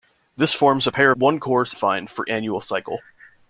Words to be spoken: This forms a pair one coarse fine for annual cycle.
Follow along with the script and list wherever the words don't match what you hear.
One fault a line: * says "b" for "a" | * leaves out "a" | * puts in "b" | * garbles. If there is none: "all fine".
all fine